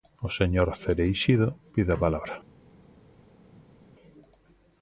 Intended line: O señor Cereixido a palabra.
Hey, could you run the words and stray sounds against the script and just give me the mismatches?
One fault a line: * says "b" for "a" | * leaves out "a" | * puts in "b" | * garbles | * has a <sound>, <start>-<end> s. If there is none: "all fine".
* puts in "pide"